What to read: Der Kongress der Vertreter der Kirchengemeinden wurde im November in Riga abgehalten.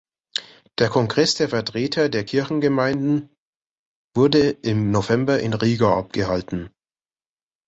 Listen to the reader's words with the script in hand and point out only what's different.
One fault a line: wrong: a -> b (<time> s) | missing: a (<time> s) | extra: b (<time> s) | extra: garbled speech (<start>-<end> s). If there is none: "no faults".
no faults